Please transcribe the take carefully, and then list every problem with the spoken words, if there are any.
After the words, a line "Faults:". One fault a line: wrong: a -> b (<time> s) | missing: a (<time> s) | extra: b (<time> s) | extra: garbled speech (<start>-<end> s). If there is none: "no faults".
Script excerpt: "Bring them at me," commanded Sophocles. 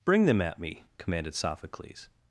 "Bring them at me," commanded Sophocles.
Faults:
no faults